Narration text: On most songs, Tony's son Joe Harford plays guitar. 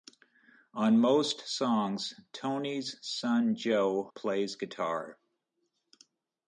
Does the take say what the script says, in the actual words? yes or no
no